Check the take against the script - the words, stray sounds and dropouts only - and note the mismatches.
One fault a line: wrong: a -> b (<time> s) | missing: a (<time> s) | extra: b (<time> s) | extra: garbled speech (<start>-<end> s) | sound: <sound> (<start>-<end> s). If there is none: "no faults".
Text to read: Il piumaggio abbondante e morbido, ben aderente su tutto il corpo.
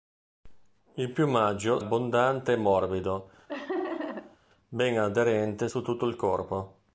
sound: laugh (3.5-4.4 s)